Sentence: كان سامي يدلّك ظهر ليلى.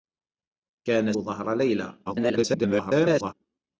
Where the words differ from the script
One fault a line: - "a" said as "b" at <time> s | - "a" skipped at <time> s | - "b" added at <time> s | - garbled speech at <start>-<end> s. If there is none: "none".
- "سامي يدلّك" skipped at 1.1 s
- garbled speech at 2.1-3.3 s